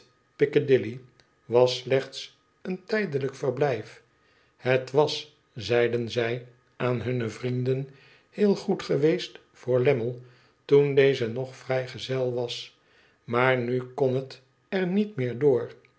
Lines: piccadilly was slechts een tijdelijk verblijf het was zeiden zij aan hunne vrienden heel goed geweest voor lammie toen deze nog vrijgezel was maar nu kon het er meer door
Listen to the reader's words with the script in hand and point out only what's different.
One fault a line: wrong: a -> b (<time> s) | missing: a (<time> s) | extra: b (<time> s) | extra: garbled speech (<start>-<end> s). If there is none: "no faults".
extra: niet (14.9 s)